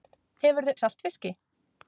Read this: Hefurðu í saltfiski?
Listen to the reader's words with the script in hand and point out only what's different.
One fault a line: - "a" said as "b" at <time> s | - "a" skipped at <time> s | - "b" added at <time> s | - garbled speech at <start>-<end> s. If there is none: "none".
none